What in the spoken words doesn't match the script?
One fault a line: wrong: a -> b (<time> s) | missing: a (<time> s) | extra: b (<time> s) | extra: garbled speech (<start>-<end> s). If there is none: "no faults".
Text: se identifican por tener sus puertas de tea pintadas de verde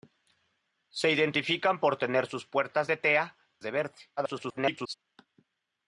missing: pintadas (3.4 s)
extra: garbled speech (4.2-4.9 s)